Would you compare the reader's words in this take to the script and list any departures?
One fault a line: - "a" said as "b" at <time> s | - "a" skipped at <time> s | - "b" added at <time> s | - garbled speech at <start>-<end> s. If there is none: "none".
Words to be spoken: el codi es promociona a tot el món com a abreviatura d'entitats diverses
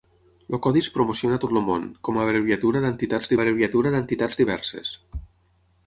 - "abreviatura d'entitats" added at 3.4 s